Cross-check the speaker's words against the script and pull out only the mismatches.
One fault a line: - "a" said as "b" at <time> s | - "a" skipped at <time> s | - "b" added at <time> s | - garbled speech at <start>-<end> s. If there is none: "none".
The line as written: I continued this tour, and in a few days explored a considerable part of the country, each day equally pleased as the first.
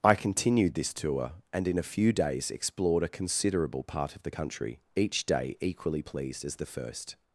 none